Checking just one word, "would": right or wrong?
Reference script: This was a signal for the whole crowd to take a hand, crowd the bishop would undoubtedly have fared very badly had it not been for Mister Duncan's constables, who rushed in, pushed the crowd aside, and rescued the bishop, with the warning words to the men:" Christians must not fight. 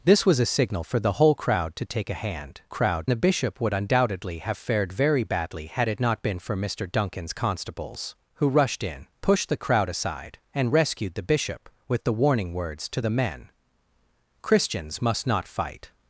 right